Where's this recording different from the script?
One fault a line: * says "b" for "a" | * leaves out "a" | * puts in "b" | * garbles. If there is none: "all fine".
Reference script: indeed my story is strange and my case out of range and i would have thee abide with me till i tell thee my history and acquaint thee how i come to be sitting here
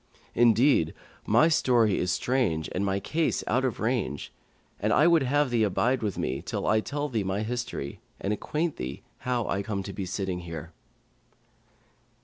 all fine